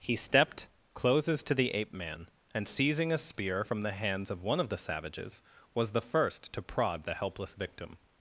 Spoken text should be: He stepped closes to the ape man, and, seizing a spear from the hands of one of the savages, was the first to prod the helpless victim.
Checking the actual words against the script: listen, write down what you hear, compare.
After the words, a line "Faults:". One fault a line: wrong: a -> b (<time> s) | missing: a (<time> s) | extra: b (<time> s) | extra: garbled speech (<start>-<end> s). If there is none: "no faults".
He stepped closes to the ape man, and, seizing a spear from the hands of one of the savages, was the first to prod the helpless victim.
Faults:
no faults